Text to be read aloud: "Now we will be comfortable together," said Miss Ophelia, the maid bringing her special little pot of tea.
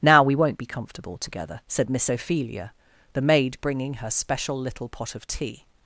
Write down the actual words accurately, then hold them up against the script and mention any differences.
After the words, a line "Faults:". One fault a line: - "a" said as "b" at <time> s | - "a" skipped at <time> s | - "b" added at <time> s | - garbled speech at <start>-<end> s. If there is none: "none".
"Now we won't be comfortable together," said Miss Ophelia, the maid bringing her special little pot of tea.
Faults:
- "will" said as "won't" at 0.3 s